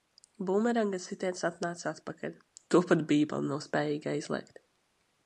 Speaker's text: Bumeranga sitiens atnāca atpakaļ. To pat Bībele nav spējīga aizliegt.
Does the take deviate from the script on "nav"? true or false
false